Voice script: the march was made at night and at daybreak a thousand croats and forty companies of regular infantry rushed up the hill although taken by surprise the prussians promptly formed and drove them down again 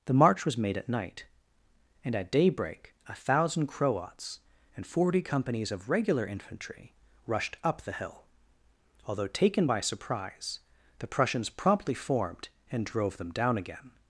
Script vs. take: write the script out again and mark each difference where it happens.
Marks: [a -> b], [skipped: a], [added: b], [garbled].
the march was made at night and at daybreak a thousand croats and forty companies of regular infantry rushed up the hill although taken by surprise the prussians promptly formed and drove them down again